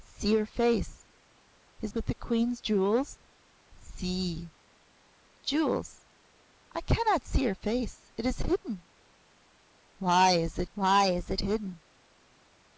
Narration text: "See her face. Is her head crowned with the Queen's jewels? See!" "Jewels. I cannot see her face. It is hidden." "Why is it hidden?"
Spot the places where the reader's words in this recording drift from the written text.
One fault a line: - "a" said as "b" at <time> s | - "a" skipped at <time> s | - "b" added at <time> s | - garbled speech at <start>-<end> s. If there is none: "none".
- "her head crowned" skipped at 1.9 s
- "why is it" added at 10.7 s